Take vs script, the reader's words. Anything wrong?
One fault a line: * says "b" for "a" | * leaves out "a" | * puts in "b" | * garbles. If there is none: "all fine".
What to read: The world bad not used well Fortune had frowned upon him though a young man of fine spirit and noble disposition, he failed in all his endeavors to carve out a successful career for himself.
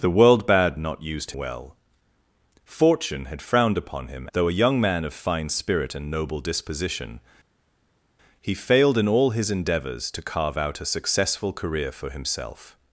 all fine